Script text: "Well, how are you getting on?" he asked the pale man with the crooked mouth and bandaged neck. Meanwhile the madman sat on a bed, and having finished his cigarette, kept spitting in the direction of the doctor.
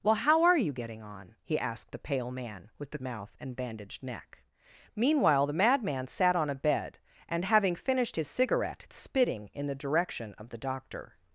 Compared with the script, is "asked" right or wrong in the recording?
right